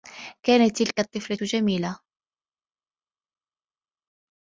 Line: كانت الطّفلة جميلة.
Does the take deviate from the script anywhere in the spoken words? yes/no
yes